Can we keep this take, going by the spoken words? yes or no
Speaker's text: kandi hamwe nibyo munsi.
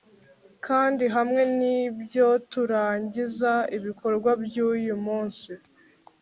no